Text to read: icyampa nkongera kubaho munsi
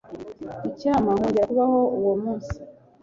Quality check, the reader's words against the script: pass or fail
fail